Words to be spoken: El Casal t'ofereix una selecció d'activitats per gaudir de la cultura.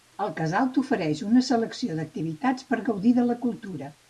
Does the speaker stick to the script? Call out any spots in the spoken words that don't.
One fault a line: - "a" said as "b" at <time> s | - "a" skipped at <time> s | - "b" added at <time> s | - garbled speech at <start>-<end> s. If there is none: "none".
none